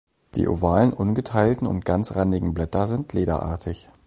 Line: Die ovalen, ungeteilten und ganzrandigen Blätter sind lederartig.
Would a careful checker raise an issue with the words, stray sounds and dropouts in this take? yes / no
no